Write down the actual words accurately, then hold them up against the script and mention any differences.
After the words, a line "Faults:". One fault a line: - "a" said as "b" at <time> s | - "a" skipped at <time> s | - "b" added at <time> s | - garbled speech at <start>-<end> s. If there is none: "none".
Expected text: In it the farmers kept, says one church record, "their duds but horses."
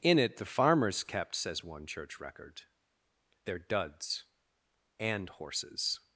In it the farmers kept, says one church record, "their duds and horses."
Faults:
- "but" said as "and" at 5.0 s